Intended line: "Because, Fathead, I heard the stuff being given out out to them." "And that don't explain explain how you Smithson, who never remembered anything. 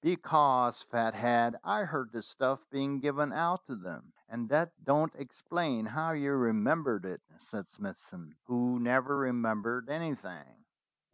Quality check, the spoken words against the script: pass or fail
fail